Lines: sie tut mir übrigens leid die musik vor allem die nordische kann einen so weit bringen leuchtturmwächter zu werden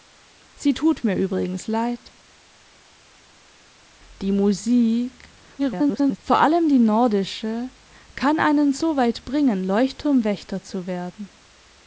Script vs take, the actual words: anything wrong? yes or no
yes